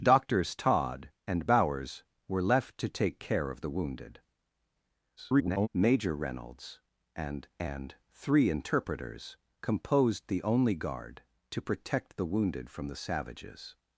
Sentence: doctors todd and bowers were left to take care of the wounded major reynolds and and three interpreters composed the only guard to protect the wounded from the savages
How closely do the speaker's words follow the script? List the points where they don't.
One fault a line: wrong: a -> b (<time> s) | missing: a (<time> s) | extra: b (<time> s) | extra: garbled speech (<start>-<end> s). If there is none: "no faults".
extra: garbled speech (5.2-5.7 s)